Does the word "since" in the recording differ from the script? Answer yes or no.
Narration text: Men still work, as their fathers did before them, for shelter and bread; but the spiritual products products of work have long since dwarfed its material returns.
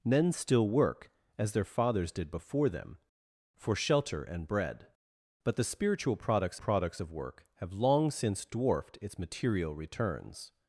no